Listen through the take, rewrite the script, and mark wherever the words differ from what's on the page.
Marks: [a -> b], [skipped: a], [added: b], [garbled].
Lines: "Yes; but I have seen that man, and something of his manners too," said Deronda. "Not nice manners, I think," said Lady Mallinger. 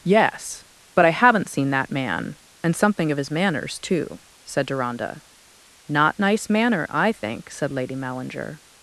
"Yes; but I [have -> haven't] seen that man, and something of his manners too," said Deronda. "Not nice [manners, -> manner] I think," said Lady Mallinger.